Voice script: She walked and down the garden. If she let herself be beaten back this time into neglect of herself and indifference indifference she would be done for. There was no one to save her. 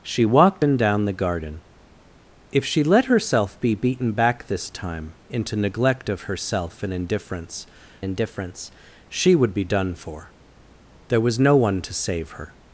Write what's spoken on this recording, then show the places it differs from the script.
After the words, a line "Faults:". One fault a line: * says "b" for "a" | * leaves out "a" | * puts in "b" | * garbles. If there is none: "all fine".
She walked and down the garden. If she let herself be beaten back this time into neglect of herself and indifference indifference she would be done for. There was no one to save her.
Faults:
all fine